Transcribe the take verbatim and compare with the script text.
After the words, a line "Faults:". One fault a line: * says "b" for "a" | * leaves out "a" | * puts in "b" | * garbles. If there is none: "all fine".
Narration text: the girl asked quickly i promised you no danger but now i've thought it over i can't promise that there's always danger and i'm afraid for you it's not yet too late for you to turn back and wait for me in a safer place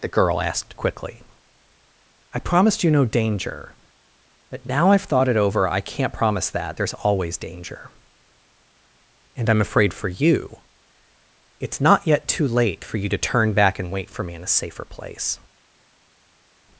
the girl asked quickly i promised you no danger but now i've thought it over i can't promise that there's always danger and i'm afraid for you it's not yet too late for you to turn back and wait for me in a safer place
Faults:
all fine